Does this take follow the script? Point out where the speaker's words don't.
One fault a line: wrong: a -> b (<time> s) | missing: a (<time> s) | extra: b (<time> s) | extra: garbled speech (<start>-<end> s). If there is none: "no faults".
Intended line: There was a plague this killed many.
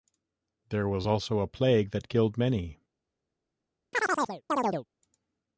extra: also (1.1 s)
wrong: this -> that (1.9 s)